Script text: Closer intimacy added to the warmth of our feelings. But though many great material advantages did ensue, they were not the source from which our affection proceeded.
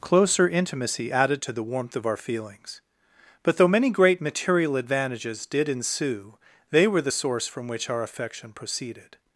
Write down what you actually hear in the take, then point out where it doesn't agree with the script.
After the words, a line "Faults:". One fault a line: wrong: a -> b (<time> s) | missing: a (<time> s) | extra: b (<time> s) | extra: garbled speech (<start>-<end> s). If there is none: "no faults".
Closer intimacy added to the warmth of our feelings. But though many great material advantages did ensue, they were the source from which our affection proceeded.
Faults:
missing: not (7.0 s)